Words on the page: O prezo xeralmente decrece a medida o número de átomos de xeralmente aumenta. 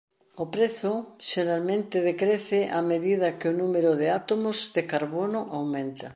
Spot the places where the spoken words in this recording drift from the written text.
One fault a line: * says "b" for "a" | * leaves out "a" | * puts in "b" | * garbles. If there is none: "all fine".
* puts in "que"
* says "carbono" for "xeralmente"